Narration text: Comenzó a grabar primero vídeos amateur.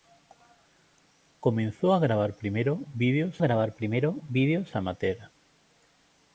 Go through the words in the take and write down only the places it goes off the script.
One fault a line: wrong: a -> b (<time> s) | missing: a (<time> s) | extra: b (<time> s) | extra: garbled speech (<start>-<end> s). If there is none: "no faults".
extra: grabar primero vídeos (3.4 s)